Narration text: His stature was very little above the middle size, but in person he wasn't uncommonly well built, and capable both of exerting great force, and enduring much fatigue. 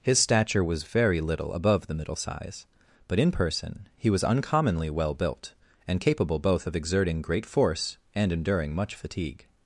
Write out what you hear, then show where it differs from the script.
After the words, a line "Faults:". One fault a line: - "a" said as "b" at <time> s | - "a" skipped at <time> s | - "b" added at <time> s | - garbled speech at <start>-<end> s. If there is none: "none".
His stature was very little above the middle size, but in person he was uncommonly well built, and capable both of exerting great force, and enduring much fatigue.
Faults:
- "wasn't" said as "was" at 4.1 s